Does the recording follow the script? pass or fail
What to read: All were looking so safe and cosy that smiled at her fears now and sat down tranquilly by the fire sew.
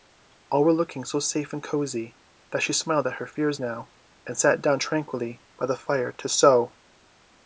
fail